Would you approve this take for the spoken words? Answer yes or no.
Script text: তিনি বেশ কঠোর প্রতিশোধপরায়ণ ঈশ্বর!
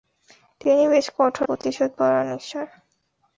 yes